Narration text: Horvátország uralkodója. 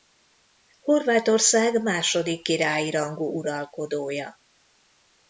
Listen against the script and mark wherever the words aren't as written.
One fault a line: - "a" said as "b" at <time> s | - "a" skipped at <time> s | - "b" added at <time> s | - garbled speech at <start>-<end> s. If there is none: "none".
- "második királyi rangú" added at 1.8 s